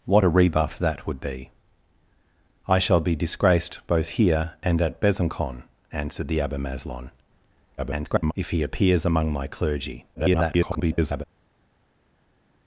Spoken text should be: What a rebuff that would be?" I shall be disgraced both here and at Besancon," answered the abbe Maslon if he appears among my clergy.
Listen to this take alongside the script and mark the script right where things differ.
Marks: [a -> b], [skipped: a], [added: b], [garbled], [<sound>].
What a rebuff that would be?" I shall be disgraced both here and at Besancon," answered the abbe Maslon [garbled] if he appears among my clergy. [garbled]